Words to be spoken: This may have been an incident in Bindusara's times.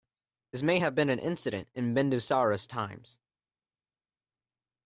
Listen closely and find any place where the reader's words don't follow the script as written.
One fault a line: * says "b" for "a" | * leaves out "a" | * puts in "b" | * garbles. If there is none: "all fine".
all fine